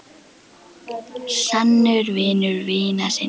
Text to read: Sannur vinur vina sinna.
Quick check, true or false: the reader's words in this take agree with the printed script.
true